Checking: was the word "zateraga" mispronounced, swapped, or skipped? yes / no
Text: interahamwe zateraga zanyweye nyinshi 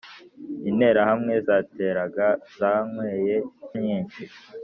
no